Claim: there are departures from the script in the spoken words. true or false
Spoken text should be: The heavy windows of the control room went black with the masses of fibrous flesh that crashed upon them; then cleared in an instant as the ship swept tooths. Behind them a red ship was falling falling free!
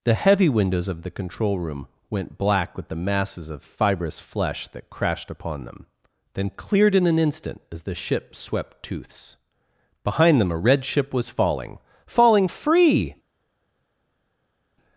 false